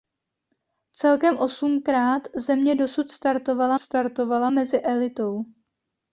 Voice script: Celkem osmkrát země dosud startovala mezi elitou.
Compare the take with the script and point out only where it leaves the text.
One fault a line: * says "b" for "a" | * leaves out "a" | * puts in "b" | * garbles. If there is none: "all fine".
* puts in "startovala"